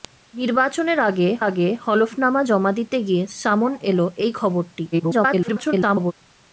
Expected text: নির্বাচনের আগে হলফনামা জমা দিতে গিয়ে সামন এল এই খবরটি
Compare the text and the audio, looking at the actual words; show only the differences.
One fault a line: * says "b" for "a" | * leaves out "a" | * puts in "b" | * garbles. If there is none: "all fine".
* puts in "আগে"
* garbles